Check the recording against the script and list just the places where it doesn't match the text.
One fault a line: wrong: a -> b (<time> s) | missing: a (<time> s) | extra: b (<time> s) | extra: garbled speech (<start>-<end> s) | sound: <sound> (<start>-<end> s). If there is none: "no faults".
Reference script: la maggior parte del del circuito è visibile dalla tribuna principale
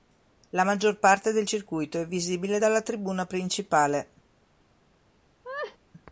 missing: del (1.4 s)
sound: laugh (5.4-5.8 s)